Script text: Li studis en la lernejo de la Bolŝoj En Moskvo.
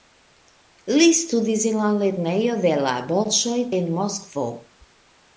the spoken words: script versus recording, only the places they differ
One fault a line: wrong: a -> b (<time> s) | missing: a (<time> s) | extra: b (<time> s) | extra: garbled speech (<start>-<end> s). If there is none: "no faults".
no faults